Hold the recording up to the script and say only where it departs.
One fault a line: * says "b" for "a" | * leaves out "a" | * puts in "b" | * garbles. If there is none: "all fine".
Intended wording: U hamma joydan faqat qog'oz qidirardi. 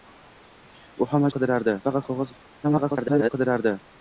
* says "qidirardi" for "joydan"
* garbles